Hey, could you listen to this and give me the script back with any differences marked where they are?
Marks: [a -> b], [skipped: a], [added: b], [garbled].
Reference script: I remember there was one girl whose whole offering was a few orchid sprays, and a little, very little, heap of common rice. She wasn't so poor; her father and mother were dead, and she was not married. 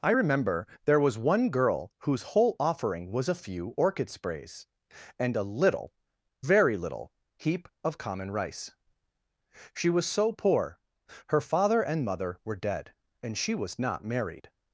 I remember there was one girl whose whole offering was a few orchid sprays, and a little, very little, heap of common rice. She [wasn't -> was] so poor; her father and mother were dead, and she was not married.